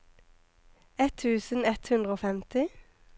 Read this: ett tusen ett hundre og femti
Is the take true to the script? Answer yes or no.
yes